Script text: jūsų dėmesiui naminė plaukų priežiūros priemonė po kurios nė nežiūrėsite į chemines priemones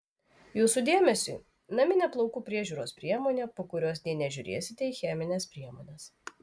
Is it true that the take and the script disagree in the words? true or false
false